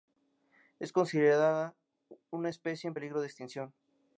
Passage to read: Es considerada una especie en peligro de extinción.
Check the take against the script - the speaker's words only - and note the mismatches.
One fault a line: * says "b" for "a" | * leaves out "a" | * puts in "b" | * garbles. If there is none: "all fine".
all fine